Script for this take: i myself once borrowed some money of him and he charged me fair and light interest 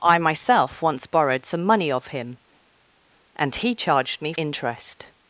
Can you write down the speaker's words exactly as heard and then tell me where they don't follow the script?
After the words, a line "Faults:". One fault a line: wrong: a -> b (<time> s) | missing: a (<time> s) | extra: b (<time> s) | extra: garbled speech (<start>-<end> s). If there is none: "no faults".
i myself once borrowed some money of him and he charged me interest
Faults:
missing: fair and light (4.3 s)